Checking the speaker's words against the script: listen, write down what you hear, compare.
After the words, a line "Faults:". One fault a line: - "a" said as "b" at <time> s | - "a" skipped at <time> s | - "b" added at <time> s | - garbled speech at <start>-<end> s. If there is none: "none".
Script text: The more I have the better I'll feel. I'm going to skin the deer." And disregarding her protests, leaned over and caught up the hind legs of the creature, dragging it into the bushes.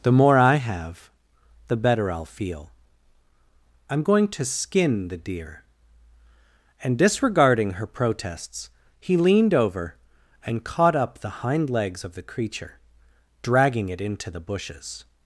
The more I have the better I'll feel. I'm going to skin the deer." And disregarding her protests, he leaned over and caught up the hind legs of the creature, dragging it into the bushes.
Faults:
- "he" added at 9.0 s